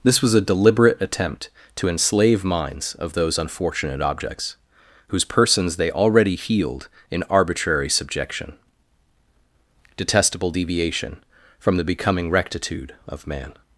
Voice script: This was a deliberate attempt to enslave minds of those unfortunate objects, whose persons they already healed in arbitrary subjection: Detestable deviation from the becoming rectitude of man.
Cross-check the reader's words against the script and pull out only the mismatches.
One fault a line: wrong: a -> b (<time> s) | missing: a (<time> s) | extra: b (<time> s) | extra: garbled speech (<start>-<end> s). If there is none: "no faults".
no faults